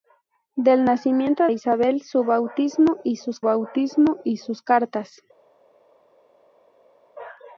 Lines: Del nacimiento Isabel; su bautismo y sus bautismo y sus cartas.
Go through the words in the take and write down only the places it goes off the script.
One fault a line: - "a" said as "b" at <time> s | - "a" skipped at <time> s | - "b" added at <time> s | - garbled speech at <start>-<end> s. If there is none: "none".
none